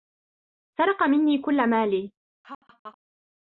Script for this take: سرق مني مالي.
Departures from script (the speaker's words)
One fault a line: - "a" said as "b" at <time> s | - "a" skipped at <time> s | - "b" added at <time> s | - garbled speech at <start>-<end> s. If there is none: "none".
- "كل" added at 1.4 s